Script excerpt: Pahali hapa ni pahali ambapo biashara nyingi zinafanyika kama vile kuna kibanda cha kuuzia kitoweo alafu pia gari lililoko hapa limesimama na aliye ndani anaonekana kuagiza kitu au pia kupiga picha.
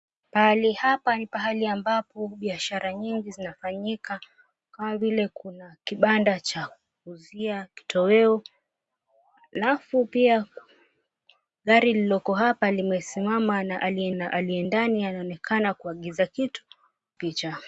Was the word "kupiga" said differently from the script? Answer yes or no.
yes